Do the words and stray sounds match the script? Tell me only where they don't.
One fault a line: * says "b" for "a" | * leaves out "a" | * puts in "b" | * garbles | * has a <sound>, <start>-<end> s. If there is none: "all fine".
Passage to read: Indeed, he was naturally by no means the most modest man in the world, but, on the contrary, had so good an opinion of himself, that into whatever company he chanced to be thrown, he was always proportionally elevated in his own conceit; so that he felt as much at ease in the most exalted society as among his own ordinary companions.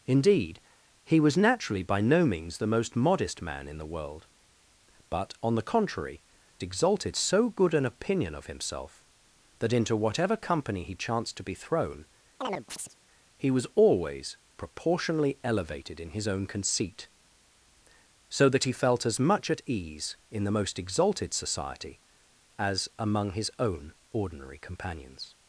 * says "exalted" for "had"
* has a chirp, 12.4-13.0 s